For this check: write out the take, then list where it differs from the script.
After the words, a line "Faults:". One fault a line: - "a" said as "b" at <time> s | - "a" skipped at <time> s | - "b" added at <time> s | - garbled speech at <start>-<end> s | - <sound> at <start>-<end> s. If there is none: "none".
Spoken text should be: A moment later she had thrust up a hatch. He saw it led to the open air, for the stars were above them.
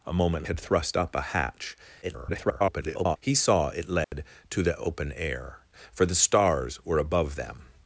A moment had thrust up a hatch. [garbled] He saw it led to the open air, for the stars were above them.
Faults:
- "later she" skipped at 0.5 s
- garbled speech at 2.0-3.2 s
- dropout at 4.0-4.1 s